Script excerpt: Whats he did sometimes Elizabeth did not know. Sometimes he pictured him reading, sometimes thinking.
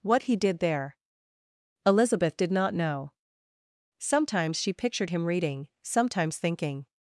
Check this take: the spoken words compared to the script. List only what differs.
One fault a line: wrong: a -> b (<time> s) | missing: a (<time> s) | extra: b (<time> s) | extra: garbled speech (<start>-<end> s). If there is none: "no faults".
wrong: Whats -> What (0.0 s)
wrong: sometimes -> there (0.6 s)
wrong: he -> she (4.6 s)